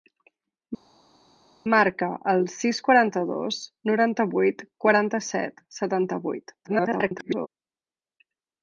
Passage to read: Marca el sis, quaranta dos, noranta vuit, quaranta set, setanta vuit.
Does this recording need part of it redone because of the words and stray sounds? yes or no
yes